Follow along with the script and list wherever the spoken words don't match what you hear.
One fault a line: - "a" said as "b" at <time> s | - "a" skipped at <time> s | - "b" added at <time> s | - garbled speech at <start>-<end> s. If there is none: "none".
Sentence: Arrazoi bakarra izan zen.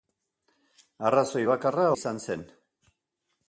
none